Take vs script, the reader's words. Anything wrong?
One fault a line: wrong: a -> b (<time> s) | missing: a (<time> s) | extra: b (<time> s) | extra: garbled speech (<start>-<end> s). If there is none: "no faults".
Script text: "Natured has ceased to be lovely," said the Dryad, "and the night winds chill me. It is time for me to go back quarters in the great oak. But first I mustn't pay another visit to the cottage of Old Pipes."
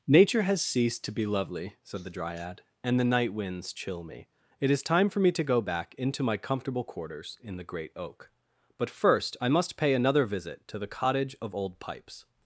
wrong: Natured -> Nature (0.1 s)
extra: into my comfortable (6.0 s)
wrong: mustn't -> must (9.5 s)